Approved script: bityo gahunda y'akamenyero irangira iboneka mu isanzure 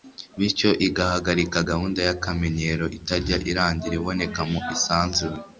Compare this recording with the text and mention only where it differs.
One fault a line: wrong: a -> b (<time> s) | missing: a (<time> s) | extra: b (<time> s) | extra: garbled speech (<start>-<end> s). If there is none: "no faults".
extra: igahagarika (0.9 s)
extra: itajya (3.0 s)